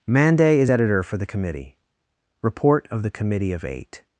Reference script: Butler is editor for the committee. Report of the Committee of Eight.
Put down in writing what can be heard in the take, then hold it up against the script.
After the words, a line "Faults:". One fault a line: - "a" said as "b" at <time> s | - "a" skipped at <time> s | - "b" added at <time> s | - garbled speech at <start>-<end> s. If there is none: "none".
Mande is editor for the committee. Report of the Committee of Eight.
Faults:
- "Butler" said as "Mande" at 0.1 s